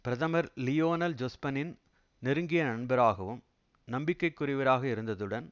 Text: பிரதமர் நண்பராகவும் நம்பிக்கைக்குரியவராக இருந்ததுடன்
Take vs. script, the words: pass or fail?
fail